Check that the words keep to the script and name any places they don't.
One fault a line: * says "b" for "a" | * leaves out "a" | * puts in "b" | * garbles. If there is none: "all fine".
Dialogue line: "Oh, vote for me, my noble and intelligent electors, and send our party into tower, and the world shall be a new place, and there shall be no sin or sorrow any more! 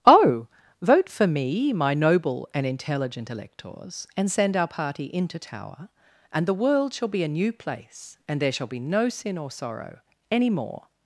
all fine